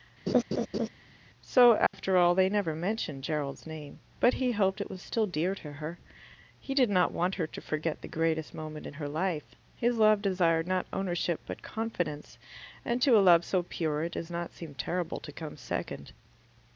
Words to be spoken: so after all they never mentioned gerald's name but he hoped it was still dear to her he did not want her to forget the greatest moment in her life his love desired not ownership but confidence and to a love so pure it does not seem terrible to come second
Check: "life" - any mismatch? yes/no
no